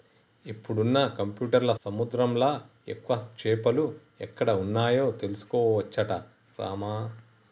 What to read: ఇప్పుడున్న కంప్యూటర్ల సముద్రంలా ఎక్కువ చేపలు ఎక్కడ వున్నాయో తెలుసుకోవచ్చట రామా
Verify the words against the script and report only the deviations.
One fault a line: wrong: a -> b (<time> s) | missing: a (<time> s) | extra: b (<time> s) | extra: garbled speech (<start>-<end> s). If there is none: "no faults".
no faults